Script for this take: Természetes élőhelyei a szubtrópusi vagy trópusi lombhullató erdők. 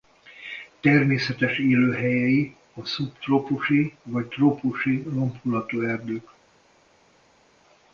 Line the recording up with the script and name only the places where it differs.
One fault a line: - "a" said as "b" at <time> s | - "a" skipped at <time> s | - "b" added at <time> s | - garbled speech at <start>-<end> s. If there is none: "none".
none